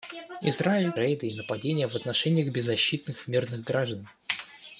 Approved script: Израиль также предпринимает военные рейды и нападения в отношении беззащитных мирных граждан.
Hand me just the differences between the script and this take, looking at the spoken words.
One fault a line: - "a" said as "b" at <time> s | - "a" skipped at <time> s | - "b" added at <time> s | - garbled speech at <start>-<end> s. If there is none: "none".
- "также предпринимает военные" skipped at 0.9 s